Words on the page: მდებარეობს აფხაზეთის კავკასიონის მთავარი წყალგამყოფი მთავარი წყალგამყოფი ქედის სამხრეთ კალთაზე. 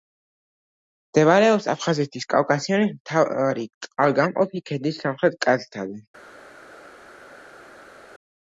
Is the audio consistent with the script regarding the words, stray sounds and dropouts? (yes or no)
no